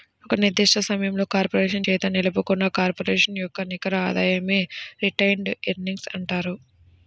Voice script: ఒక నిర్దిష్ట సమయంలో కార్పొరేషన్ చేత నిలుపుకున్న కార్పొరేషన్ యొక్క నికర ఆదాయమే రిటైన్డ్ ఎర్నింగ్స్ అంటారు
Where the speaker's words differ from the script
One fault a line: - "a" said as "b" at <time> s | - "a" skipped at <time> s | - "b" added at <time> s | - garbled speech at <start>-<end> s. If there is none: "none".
none